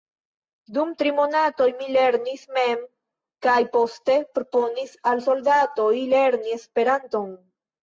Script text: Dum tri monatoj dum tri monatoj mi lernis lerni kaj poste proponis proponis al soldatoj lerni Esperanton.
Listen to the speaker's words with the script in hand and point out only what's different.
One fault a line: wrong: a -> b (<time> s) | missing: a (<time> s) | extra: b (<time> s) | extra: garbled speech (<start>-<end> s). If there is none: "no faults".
missing: dum tri monatoj (1.7 s)
wrong: lerni -> mem (2.6 s)
missing: proponis (5.0 s)